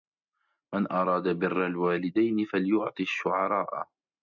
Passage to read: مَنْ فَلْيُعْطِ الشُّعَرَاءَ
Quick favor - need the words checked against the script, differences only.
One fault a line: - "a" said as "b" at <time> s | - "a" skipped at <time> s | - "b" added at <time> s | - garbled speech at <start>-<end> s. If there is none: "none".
- "أَرَادَ بِرَّ الْوَالِدَيْنِ" added at 0.9 s